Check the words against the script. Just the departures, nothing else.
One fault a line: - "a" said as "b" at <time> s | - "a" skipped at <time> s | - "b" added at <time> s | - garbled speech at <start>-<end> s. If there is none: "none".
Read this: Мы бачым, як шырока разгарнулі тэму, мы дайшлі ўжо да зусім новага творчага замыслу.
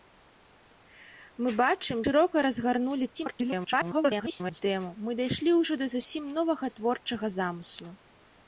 - "як" skipped at 2.0 s
- garbled speech at 3.1-4.6 s